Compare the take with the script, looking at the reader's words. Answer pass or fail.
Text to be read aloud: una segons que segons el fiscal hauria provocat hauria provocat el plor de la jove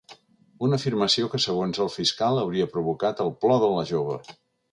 fail